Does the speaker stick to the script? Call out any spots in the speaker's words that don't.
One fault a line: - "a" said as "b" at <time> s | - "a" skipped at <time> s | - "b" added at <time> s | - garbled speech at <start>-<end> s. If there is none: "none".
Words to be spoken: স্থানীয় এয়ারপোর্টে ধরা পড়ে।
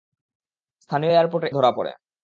none